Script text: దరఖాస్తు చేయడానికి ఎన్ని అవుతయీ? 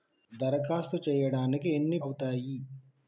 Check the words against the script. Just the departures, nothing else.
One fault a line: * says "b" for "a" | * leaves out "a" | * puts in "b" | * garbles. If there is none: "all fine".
all fine